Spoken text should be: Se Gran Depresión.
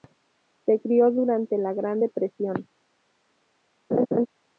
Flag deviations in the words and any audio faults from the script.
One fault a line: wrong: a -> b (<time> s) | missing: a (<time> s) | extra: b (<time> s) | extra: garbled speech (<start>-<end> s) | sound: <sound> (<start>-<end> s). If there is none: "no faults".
extra: crio durante la (0.8 s)
sound: laugh (3.9-4.3 s)